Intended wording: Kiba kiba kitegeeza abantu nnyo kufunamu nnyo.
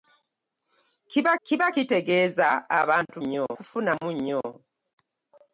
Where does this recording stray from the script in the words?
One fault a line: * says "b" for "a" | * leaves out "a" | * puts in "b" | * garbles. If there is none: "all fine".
all fine